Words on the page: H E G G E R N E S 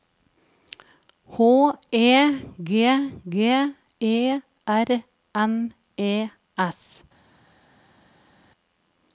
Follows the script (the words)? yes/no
yes